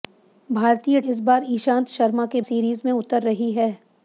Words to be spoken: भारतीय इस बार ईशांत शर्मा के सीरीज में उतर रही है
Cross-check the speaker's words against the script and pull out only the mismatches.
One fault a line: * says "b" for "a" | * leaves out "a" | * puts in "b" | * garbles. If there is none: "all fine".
all fine